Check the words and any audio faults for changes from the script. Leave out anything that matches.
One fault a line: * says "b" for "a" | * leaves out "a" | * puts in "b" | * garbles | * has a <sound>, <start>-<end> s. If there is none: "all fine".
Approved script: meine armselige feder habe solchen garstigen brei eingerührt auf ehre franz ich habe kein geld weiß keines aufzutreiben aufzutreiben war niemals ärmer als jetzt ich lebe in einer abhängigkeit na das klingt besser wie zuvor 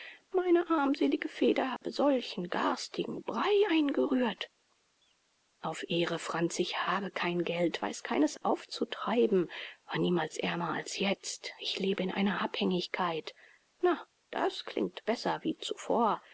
* has a dropout, 1.8-1.8 s
* leaves out "aufzutreiben"